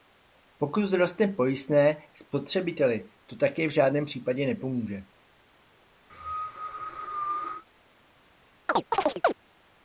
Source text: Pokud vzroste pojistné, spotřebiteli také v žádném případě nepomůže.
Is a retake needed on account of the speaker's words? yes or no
yes